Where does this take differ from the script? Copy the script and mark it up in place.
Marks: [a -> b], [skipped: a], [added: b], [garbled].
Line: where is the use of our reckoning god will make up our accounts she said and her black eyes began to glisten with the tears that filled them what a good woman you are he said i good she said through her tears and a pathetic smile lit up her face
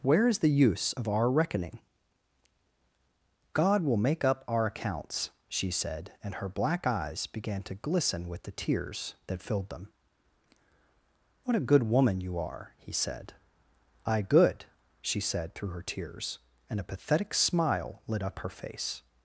where is the use of our reckoning god will make up our accounts she said and her black eyes began to glisten with the tears that filled them what a good woman you are he said i good she said through her tears and a pathetic smile lit up her face